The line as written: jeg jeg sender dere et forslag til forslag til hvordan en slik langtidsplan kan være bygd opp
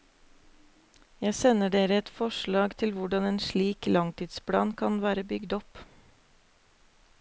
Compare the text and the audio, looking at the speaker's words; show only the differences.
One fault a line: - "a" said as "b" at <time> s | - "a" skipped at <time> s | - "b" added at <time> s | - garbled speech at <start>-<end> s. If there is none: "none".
- "jeg" skipped at 1.4 s
- "forslag til" skipped at 3.0 s